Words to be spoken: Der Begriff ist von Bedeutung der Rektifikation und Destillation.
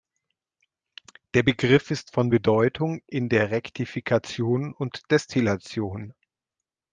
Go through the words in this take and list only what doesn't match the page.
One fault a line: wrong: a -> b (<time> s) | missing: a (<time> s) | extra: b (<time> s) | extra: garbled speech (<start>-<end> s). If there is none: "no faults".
extra: in (3.1 s)